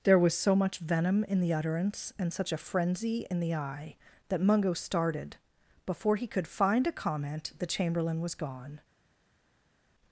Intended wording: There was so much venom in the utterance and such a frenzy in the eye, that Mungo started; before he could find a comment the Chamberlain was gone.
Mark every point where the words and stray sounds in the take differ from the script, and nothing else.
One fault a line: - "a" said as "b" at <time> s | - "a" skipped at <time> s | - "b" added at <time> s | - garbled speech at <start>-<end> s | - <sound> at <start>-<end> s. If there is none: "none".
none